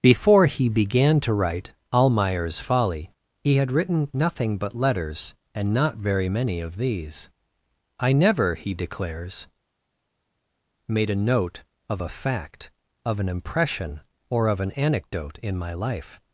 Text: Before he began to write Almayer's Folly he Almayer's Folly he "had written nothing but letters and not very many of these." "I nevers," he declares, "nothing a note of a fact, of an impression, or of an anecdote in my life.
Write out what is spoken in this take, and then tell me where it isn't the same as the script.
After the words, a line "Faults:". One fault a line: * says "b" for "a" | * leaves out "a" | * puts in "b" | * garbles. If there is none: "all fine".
Before he began to write Almayer's Folly he "had written nothing but letters and not very many of these." "I never," he declares, "made a note of a fact, of an impression, or of an anecdote in my life.
Faults:
* leaves out "Almayer's Folly he"
* says "never" for "nevers"
* says "made" for "nothing"